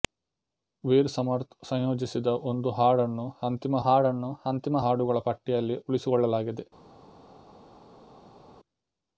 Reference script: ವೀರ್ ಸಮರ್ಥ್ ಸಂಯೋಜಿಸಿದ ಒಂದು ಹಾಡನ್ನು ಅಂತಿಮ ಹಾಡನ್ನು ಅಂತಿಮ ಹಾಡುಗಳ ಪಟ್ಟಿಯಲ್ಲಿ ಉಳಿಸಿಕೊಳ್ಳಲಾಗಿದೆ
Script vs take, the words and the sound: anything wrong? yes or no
no